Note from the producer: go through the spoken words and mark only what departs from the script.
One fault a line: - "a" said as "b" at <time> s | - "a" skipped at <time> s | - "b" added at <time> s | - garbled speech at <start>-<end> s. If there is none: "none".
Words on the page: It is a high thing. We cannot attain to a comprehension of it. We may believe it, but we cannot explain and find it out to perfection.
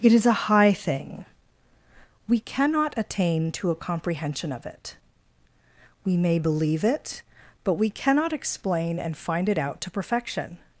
none